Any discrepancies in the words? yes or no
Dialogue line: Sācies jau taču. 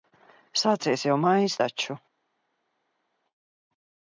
yes